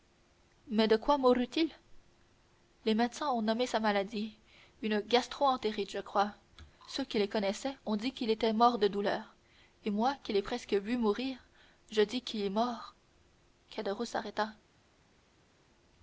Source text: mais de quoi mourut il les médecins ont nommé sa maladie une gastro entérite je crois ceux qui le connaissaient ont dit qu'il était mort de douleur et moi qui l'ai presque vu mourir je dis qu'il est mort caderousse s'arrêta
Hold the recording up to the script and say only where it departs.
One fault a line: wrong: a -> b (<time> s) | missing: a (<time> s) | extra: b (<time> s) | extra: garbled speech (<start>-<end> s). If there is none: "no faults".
no faults